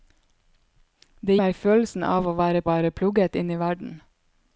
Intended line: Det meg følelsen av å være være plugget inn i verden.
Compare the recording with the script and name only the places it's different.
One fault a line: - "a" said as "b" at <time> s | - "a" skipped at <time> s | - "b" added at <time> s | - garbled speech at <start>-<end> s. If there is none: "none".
none